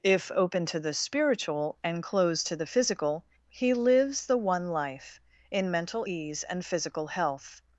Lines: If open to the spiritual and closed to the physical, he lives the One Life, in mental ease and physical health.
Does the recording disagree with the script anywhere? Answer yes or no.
no